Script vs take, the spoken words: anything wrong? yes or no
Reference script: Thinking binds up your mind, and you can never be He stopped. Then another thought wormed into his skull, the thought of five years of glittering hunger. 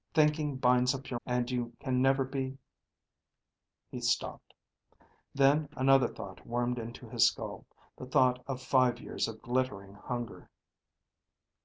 yes